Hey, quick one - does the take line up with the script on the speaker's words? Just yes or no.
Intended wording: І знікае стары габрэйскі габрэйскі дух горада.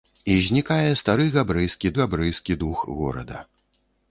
yes